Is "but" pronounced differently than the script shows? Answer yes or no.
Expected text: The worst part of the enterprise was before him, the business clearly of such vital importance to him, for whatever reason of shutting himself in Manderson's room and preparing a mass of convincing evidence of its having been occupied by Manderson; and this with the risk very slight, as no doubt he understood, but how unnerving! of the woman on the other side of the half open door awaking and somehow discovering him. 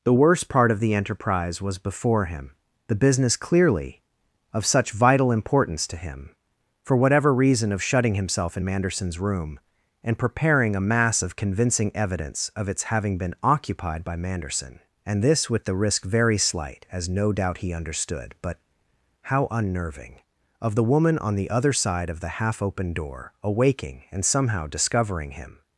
no